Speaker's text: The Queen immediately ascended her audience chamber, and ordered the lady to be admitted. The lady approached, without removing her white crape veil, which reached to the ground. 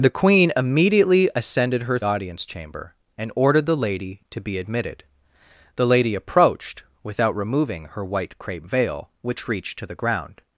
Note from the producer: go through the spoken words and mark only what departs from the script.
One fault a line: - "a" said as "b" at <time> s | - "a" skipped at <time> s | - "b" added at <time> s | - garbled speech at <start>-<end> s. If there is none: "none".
none